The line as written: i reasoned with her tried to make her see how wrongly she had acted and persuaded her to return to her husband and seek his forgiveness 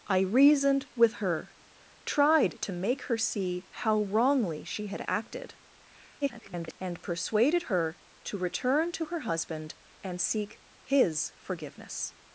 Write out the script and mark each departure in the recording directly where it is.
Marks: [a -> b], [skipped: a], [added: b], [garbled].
i reasoned with her tried to make her see how wrongly she had acted [garbled] and persuaded her to return to her husband and seek his forgiveness